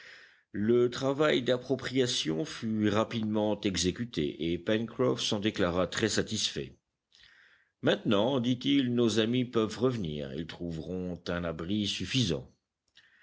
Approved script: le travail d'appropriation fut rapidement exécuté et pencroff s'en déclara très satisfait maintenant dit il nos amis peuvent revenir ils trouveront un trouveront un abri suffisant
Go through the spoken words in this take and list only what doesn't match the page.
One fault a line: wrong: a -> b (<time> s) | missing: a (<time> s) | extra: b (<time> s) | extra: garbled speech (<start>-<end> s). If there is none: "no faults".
missing: trouveront un (11.4 s)